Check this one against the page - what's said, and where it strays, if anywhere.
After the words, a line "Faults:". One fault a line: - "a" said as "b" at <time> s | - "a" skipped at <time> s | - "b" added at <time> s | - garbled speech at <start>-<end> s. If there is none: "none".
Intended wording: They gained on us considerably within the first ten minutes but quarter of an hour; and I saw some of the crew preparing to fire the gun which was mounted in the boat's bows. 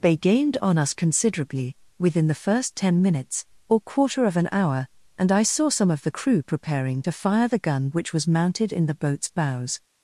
They gained on us considerably within the first ten minutes or quarter of an hour; and I saw some of the crew preparing to fire the gun which was mounted in the boat's bows.
Faults:
- "but" said as "or" at 3.7 s